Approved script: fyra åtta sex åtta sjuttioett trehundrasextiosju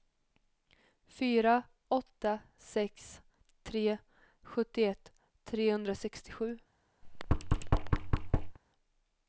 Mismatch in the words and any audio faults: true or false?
true